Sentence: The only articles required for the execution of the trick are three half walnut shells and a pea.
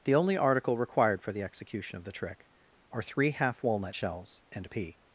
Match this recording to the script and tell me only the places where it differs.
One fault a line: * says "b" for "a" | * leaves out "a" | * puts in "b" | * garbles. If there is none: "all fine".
* says "article" for "articles"